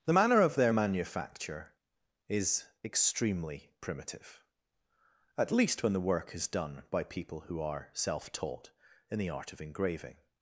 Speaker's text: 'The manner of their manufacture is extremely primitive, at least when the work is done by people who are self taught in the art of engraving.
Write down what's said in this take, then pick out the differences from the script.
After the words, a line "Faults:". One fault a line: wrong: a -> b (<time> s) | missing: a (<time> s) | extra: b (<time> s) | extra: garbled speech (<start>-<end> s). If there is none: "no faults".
'The manner of their manufacture is extremely primitive, at least when the work is done by people who are self taught in the art of engraving.
Faults:
no faults